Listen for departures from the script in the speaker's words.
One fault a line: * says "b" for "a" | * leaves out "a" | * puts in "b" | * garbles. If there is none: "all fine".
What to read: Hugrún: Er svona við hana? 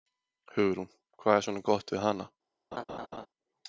* puts in "Hvað"
* puts in "gott"